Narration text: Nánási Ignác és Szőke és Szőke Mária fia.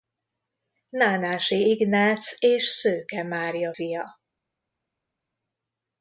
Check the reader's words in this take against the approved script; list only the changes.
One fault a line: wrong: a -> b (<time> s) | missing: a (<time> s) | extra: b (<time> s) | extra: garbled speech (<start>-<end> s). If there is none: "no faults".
missing: és Szőke (3.2 s)